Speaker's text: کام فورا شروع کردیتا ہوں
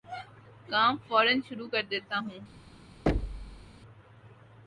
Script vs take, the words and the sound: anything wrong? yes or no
yes